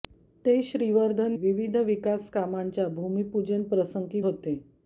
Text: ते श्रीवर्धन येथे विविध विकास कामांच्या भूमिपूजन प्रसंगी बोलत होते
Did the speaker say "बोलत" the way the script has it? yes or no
no